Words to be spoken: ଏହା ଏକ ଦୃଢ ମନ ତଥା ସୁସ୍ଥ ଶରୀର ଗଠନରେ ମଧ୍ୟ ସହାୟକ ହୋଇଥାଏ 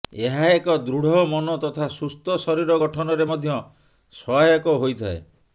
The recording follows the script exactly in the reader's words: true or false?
true